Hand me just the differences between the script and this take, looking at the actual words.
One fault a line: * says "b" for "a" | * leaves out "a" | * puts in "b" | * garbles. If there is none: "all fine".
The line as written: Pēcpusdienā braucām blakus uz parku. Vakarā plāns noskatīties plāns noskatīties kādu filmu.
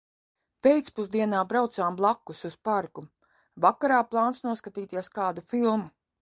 * leaves out "plāns noskatīties"